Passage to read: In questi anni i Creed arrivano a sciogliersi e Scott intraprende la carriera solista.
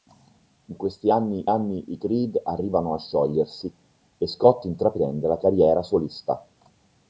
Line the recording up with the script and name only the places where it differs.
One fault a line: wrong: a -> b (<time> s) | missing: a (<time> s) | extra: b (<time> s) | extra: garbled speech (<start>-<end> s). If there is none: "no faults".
extra: anni (1.5 s)